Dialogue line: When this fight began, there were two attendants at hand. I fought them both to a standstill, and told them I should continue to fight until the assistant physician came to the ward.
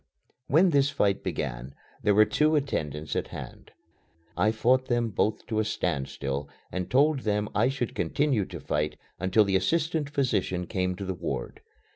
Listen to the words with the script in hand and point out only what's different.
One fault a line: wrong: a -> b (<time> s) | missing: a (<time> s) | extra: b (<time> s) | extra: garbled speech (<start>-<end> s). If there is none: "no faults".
no faults